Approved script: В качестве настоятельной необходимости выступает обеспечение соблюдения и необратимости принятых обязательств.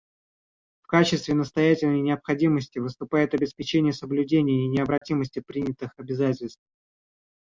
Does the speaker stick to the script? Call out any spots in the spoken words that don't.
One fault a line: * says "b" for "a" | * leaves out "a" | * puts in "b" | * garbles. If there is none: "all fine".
all fine